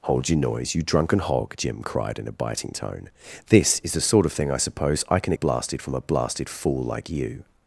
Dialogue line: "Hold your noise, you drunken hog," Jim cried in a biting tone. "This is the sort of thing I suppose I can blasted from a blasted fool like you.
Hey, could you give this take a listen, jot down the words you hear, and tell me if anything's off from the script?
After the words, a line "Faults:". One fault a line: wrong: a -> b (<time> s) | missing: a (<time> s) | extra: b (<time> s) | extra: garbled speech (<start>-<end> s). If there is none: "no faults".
"Hold your noise, you drunken hog," Jim cried in a biting tone. "This is the sort of thing I suppose I can blasted from a blasted fool like you.
Faults:
no faults